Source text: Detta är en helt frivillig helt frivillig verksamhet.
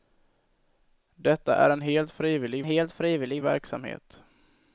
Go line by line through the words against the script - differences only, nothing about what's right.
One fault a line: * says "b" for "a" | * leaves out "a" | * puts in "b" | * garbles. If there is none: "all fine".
all fine